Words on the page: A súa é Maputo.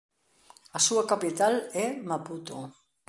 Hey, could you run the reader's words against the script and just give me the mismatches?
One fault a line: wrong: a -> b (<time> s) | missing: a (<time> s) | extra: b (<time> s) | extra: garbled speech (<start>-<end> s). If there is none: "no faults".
extra: capital (1.1 s)